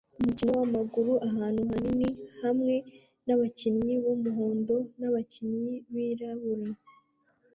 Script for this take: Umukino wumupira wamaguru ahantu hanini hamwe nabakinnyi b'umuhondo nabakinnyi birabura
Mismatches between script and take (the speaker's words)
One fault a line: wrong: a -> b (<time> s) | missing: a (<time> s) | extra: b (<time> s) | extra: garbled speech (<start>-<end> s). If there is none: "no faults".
missing: wumupira (0.5 s)